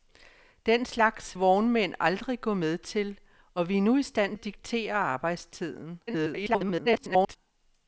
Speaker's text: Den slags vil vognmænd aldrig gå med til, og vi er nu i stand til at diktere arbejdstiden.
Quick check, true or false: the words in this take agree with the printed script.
false